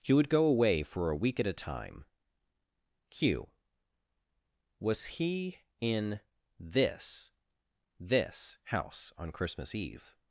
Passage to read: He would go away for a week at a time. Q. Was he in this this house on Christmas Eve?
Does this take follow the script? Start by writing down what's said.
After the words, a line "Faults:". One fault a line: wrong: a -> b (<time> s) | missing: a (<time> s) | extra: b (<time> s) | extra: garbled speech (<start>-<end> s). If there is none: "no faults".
He would go away for a week at a time. Q. Was he in this this house on Christmas Eve?
Faults:
no faults